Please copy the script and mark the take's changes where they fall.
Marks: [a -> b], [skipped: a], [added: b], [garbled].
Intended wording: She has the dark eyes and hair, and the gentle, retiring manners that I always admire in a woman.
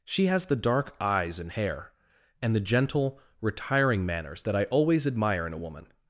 She has the dark eyes and hair, and the gentle, retiring manners that I always admire in a woman.